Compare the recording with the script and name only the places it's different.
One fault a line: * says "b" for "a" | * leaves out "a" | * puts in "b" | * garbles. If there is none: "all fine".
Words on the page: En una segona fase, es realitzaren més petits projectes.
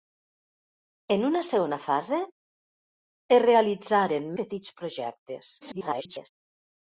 * leaves out "més"
* garbles